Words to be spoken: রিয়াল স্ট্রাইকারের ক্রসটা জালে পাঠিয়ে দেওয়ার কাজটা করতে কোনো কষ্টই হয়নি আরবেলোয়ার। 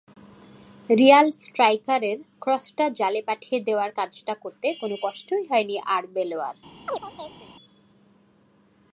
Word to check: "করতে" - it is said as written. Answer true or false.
true